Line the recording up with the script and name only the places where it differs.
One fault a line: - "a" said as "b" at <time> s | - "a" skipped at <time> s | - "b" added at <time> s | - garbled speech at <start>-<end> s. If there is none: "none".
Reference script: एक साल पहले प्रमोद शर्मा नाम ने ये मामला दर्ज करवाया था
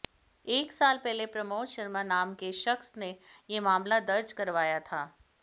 - "के शख्स" added at 2.4 s